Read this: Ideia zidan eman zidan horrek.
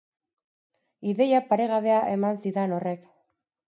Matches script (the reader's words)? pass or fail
fail